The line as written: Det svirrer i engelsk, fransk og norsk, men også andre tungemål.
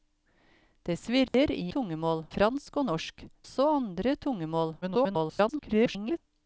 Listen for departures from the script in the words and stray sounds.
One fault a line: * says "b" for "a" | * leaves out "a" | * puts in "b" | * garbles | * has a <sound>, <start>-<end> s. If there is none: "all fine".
* has a dropout, 1.3-1.3 s
* says "tungemål" for "engelsk"
* leaves out "men"
* garbles